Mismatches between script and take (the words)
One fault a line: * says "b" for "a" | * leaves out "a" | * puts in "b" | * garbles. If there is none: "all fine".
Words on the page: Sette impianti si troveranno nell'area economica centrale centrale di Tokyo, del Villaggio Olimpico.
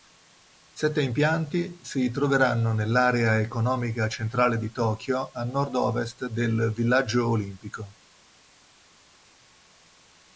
* leaves out "centrale"
* puts in "a nord ovest"